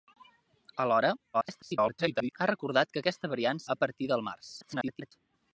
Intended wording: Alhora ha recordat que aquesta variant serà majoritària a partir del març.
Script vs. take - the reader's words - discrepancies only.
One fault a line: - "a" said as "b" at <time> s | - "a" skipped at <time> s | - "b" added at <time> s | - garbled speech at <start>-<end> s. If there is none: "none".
- garbled speech at 1.3-2.3 s
- "serà majoritària" skipped at 3.6 s
- garbled speech at 4.6-5.1 s